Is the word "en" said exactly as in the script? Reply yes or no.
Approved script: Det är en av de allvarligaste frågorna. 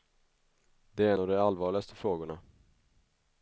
no